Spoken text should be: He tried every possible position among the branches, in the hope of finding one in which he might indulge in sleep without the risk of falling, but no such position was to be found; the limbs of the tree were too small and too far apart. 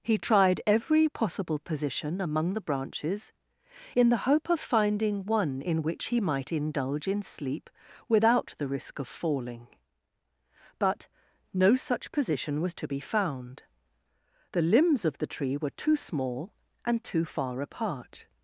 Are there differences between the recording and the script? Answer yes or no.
no